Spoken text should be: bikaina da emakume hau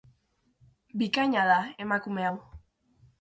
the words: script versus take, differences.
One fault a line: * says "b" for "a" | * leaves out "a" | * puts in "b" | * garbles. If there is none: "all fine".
all fine